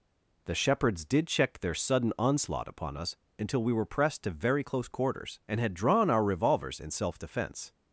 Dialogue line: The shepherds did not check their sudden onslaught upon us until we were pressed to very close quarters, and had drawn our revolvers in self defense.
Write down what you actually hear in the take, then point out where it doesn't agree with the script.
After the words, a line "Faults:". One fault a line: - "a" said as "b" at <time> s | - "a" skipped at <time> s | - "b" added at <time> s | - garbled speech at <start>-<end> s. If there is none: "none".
The shepherds did check their sudden onslaught upon us until we were pressed to very close quarters, and had drawn our revolvers in self defense.
Faults:
- "not" skipped at 1.3 s